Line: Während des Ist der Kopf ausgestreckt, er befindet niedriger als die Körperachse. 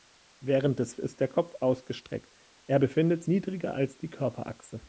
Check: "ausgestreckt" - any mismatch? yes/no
no